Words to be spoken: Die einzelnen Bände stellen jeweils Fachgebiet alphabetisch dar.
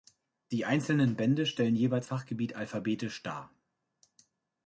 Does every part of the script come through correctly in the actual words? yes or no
yes